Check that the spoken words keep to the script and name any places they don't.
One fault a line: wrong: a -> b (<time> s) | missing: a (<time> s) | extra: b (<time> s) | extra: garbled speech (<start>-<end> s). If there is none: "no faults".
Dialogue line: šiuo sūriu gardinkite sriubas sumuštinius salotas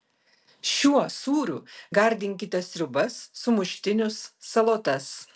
no faults